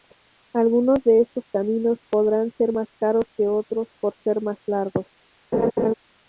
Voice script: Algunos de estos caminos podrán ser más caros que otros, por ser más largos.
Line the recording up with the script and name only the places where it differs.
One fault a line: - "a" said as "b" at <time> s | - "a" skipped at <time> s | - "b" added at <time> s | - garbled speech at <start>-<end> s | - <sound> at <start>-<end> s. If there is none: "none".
- laugh at 5.5-5.9 s